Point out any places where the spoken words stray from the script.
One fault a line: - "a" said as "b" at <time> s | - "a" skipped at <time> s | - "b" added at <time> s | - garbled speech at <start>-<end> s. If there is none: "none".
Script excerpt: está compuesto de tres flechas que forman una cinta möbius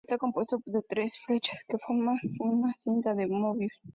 - "de" added at 3.1 s